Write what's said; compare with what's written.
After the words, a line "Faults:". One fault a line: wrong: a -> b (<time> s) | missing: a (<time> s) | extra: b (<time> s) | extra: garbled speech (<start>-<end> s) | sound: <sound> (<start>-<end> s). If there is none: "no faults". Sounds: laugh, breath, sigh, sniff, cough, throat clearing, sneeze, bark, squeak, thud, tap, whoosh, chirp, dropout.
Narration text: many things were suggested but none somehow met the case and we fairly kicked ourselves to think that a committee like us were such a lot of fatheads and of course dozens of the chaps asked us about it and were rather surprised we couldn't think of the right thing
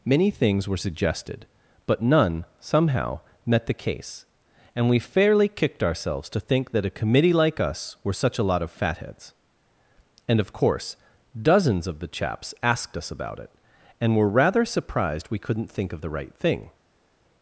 many things were suggested but none somehow met the case and we fairly kicked ourselves to think that a committee like us were such a lot of fatheads and of course dozens of the chaps asked us about it and were rather surprised we couldn't think of the right thing
Faults:
no faults